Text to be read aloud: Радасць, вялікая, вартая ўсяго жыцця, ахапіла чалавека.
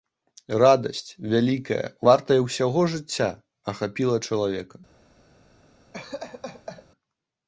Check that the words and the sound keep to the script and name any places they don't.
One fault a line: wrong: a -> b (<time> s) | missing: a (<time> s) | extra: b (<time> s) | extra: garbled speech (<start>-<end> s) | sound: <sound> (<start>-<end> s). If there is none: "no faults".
sound: laugh (5.9-6.9 s)